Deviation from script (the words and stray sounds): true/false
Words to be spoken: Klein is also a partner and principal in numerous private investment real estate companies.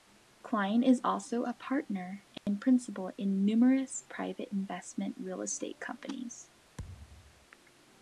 true